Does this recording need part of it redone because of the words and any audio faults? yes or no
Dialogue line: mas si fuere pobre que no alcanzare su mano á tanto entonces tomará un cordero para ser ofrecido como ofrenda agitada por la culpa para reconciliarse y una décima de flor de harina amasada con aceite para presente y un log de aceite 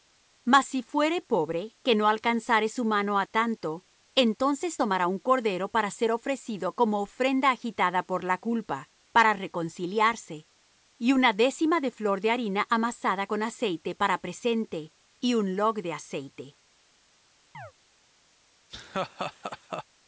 yes